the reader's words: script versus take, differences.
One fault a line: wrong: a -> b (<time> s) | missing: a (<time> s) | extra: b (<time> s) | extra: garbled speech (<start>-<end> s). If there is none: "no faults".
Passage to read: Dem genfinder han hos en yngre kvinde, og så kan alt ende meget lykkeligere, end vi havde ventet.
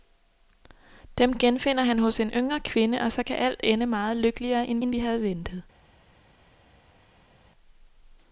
extra: end (4.8 s)